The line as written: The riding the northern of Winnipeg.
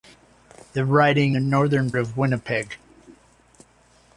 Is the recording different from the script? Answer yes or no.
no